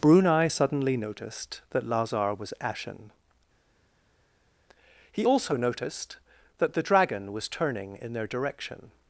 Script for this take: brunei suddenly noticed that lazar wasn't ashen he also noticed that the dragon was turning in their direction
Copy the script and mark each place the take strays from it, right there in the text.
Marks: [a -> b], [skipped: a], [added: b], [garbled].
brunei suddenly noticed that lazar [wasn't -> was] ashen he also noticed that the dragon was turning in their direction